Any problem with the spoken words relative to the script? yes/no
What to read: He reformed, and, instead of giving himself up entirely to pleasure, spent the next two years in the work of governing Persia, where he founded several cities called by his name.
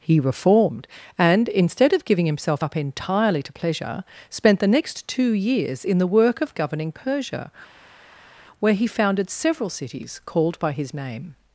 no